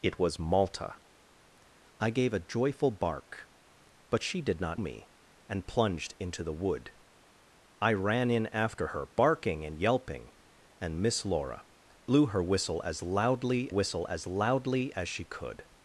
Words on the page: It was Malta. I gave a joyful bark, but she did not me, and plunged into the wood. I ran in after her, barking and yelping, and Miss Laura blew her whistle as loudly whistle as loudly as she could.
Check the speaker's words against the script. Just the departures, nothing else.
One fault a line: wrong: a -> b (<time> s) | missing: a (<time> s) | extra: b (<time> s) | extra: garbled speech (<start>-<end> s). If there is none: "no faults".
no faults